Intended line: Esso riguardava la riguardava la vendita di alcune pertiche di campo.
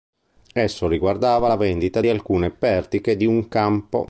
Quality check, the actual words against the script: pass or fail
fail